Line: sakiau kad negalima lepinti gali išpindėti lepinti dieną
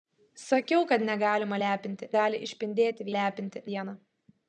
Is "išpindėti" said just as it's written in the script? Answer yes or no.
yes